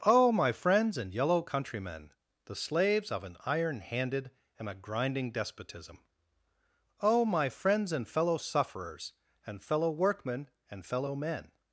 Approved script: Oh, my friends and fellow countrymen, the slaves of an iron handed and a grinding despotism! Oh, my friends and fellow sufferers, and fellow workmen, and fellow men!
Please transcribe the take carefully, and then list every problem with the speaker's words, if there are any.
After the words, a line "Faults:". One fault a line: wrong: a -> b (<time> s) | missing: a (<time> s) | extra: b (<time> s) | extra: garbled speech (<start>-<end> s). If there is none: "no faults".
Oh, my friends and yellow countrymen, the slaves of an iron handed and a grinding despotism! Oh, my friends and fellow sufferers, and fellow workmen, and fellow men!
Faults:
wrong: fellow -> yellow (1.1 s)